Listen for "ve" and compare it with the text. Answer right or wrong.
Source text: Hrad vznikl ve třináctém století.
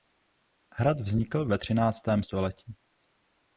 right